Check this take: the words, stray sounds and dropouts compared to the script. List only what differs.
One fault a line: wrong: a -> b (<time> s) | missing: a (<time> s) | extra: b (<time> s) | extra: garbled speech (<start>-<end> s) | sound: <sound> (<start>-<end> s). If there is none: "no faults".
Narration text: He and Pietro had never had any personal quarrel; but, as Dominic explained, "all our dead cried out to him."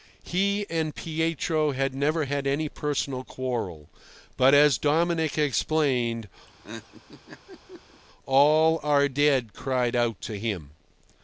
sound: laugh (6.5-8.0 s)